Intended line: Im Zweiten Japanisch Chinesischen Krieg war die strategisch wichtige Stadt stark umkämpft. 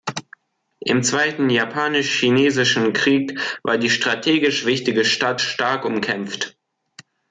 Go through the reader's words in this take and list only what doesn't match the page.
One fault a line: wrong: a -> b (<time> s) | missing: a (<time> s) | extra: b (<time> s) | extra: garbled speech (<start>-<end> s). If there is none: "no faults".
no faults